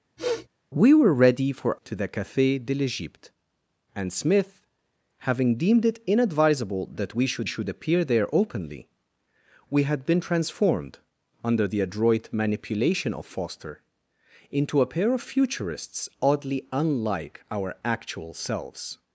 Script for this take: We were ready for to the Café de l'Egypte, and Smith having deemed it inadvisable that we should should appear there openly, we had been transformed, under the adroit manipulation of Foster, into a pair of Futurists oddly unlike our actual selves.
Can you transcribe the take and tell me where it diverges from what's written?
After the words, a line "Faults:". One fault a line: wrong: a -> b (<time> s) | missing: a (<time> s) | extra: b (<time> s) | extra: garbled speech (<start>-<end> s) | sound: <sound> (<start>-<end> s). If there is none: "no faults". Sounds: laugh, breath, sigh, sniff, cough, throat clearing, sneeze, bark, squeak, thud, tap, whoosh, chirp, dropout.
We were ready for to the Café de l'Egypte, and Smith having deemed it inadvisable that we should should appear there openly, we had been transformed, under the adroit manipulation of Foster, into a pair of Futurists oddly unlike our actual selves.
Faults:
sound: sniff (0.2-0.5 s)